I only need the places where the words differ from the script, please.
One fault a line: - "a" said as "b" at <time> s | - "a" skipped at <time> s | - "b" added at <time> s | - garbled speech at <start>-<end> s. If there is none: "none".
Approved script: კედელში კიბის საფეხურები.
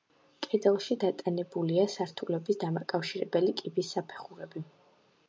- "დატანებულია სართულების დამაკავშირებელი" added at 1.0 s